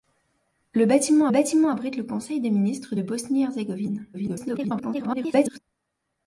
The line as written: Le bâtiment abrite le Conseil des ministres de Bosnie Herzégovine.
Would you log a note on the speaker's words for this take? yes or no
yes